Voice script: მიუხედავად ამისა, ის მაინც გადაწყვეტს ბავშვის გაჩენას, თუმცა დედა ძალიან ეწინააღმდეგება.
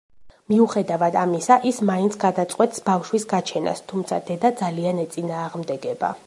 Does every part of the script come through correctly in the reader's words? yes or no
yes